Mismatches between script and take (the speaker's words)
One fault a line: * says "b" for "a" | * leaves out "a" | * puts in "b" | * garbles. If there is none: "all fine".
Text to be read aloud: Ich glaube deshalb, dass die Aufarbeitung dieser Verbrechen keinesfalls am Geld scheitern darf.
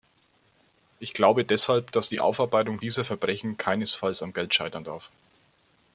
all fine